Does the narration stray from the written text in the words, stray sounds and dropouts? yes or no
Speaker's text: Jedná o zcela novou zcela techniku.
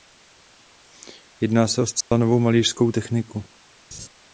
yes